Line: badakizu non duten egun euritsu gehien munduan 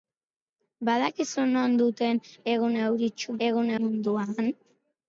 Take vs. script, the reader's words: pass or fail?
fail